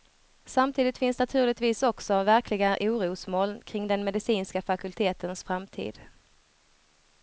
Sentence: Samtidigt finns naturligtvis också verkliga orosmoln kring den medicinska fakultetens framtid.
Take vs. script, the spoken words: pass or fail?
pass